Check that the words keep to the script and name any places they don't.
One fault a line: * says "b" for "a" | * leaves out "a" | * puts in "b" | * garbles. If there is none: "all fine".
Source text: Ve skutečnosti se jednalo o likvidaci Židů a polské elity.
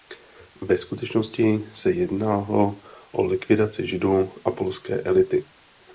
all fine